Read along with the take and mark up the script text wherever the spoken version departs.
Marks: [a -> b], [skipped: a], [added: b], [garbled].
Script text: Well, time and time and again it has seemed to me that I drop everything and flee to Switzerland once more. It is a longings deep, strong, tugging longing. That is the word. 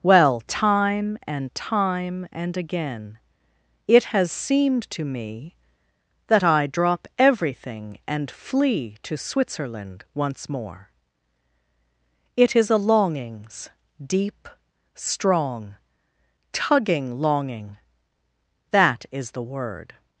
Well, time and time and again it has seemed to me that I drop everything and flee to Switzerland once more. It is a longings deep, strong, tugging longing. That is the word.